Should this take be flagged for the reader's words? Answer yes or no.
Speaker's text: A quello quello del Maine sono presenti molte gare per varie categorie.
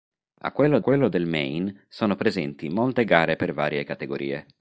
no